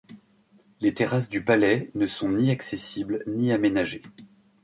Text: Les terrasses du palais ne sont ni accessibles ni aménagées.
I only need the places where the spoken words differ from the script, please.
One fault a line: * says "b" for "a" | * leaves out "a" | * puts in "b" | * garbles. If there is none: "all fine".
all fine